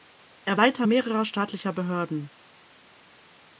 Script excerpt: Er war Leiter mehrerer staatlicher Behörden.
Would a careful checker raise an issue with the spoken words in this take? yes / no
yes